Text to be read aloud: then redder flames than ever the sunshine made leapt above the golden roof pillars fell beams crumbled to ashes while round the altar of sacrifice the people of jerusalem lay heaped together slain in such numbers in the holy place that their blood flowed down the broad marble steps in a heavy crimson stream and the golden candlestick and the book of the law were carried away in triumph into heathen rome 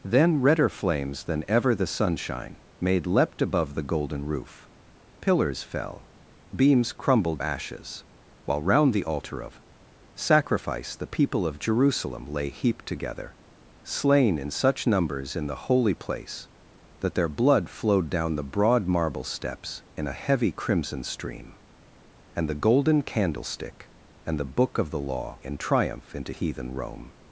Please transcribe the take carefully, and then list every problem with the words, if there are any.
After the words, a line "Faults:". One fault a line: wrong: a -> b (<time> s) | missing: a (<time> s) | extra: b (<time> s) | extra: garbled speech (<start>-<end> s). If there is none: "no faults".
then redder flames than ever the sunshine made leapt above the golden roof pillars fell beams crumbled ashes while round the altar of sacrifice the people of jerusalem lay heaped together slain in such numbers in the holy place that their blood flowed down the broad marble steps in a heavy crimson stream and the golden candlestick and the book of the law in triumph into heathen rome
Faults:
missing: to (7.4 s)
missing: were carried away (25.4 s)